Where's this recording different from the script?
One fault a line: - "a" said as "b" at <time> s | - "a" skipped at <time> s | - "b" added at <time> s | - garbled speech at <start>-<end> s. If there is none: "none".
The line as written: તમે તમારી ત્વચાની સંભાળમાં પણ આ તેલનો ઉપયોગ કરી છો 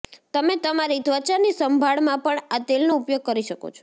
- "શકો" added at 3.5 s